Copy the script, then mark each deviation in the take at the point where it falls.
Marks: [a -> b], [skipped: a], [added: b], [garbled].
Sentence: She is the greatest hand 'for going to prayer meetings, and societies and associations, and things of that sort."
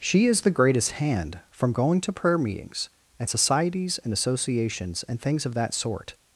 She is the greatest hand ['for -> from] going to prayer meetings, and societies and associations, and things of that sort."